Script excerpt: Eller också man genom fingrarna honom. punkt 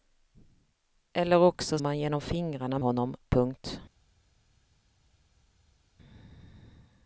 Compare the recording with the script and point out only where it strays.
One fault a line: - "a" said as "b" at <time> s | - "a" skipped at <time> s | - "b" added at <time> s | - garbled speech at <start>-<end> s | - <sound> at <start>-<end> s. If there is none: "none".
none